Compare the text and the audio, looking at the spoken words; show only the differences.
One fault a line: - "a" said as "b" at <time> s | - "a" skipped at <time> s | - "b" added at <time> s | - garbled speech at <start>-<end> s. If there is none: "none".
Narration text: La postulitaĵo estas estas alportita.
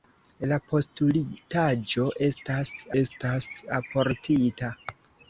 none